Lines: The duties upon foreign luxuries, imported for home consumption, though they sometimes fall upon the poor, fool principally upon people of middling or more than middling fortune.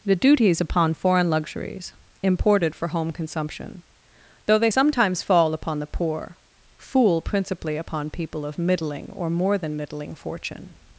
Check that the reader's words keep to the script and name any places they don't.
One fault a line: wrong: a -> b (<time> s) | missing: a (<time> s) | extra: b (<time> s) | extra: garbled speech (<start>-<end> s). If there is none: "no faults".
no faults